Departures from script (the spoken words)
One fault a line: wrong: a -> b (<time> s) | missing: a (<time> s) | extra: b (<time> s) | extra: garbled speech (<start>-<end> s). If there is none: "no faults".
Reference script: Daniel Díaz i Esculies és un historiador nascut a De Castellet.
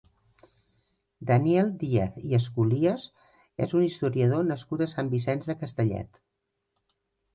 extra: Sant Vicenç (5.0 s)